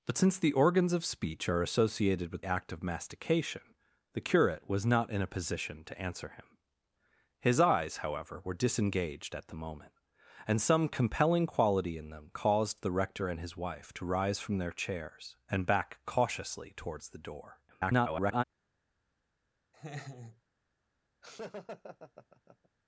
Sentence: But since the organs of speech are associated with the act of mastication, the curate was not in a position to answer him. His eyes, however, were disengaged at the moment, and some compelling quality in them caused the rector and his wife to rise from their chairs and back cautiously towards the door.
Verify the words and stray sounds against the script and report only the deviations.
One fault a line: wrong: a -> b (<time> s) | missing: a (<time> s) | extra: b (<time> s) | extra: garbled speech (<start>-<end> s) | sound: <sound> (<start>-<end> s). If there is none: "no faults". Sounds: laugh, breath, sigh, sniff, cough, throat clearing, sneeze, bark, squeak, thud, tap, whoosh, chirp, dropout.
missing: the (2.5 s)
extra: garbled speech (17.7-18.4 s)
sound: laugh (19.7-20.4 s)
sound: laugh (21.2-22.7 s)